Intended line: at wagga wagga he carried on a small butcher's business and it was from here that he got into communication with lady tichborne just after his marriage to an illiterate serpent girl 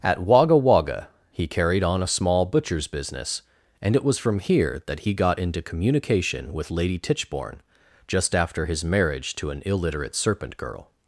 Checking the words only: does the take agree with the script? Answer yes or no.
yes